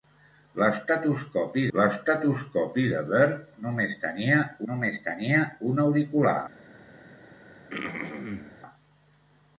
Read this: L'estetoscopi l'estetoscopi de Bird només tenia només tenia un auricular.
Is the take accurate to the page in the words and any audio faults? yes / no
no